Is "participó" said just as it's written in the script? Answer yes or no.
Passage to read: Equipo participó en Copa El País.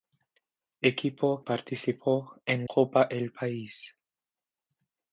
yes